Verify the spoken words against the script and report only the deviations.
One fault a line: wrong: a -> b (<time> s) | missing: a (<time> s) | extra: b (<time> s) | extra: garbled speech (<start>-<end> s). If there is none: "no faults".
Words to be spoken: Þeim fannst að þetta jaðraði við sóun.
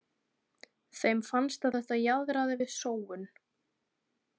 no faults